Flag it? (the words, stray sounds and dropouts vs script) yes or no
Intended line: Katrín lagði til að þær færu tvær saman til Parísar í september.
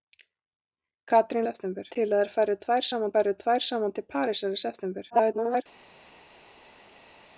yes